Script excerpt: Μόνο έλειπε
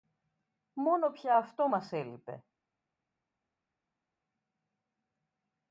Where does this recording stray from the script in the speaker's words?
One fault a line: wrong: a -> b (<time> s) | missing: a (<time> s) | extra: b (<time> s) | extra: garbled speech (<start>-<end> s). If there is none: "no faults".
extra: πια αυτό μας (1.1 s)